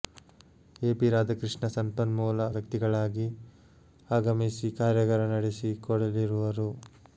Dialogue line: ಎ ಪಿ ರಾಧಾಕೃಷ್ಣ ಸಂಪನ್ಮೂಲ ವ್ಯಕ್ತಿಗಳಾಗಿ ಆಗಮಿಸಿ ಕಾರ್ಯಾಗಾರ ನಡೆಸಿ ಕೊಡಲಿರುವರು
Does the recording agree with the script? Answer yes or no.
yes